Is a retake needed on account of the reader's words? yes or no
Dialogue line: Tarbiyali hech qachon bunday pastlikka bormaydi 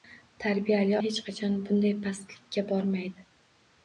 no